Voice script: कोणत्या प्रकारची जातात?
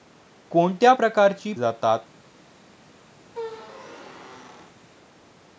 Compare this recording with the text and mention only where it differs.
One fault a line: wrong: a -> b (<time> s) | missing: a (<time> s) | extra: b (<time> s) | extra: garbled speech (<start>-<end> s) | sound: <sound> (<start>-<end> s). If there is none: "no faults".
sound: squeak (3.2-4.8 s)